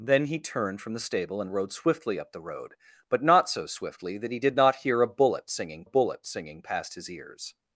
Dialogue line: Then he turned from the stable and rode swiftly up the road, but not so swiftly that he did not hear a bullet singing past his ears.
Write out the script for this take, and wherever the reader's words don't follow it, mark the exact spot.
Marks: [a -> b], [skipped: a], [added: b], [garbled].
Then he turned from the stable and rode swiftly up the road, but not so swiftly that he did not hear a bullet singing [added: bullet singing] past his ears.